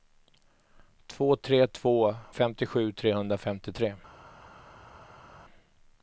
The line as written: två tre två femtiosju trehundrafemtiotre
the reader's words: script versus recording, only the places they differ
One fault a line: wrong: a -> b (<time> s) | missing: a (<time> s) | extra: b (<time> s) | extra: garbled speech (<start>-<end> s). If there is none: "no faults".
no faults